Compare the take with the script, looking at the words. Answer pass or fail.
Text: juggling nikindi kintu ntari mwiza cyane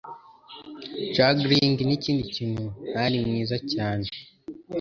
pass